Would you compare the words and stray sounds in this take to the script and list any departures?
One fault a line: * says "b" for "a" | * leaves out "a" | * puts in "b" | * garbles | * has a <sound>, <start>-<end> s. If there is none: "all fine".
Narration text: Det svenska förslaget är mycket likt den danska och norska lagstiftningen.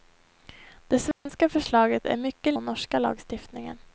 * has a dropout, 1.1-1.3 s
* leaves out "likt den danska"